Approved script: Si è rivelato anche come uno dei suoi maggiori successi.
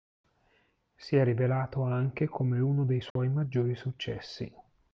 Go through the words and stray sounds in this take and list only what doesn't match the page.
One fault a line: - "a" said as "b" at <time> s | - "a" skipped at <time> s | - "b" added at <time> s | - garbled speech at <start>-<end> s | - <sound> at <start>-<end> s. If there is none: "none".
- dropout at 3.1-3.2 s